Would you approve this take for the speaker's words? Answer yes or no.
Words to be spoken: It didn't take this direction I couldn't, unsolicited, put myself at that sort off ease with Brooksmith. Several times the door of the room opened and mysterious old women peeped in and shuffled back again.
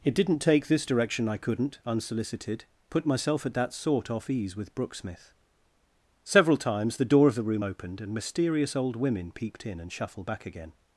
yes